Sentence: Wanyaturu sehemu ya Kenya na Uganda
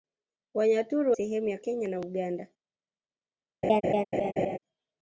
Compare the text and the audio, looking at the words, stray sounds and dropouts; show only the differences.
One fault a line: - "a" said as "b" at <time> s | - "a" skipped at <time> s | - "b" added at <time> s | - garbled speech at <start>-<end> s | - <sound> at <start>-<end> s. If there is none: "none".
- laugh at 3.6-4.6 s